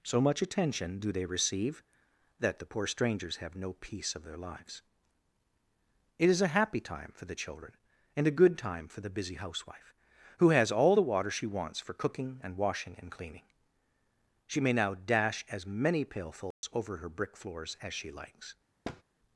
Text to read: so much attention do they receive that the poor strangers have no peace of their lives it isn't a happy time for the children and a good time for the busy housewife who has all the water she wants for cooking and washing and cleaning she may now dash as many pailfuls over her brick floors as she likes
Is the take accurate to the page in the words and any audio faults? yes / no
no